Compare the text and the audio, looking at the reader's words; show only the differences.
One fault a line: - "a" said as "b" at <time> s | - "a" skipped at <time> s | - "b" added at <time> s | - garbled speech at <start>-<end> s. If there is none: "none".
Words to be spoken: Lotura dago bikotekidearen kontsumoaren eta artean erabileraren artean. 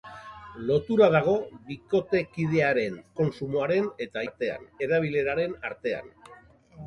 none